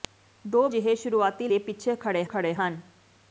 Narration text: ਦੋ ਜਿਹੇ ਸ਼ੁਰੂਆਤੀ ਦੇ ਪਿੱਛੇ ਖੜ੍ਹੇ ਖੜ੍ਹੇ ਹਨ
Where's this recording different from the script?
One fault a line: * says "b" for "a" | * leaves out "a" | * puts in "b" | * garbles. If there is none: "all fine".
all fine